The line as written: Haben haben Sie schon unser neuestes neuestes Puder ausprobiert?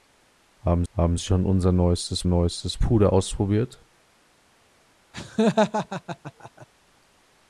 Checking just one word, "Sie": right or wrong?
right